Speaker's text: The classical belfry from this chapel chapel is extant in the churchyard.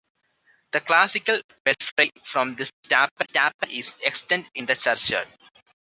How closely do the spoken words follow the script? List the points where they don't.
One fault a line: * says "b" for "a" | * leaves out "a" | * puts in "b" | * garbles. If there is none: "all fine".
all fine